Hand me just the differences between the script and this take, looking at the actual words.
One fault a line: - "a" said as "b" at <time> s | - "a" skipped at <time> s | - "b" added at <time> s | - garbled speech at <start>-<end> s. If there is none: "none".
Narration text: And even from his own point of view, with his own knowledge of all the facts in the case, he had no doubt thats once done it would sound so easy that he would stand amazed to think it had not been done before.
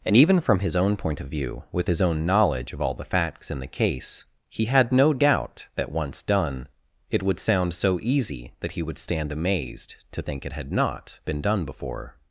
- "thats" said as "that" at 5.8 s